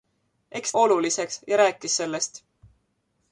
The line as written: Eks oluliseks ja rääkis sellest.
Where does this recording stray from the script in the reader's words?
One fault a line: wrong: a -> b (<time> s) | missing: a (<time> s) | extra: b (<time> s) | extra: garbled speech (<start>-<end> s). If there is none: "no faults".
no faults